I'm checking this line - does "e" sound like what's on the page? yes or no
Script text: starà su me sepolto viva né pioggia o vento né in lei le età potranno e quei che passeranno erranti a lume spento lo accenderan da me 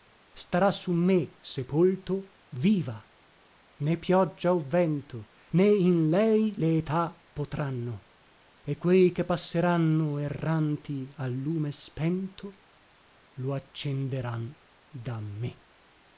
yes